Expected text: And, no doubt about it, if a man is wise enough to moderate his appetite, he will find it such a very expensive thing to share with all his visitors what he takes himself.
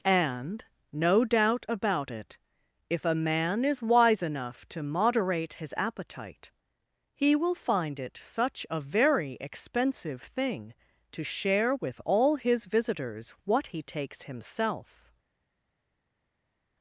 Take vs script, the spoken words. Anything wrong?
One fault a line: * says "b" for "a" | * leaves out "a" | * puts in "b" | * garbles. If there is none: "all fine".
all fine